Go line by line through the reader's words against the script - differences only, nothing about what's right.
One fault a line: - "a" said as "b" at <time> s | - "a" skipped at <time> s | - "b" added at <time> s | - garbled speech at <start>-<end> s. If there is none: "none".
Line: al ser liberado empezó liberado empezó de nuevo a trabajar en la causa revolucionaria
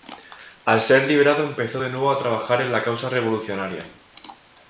- "liberado empezó" skipped at 1.8 s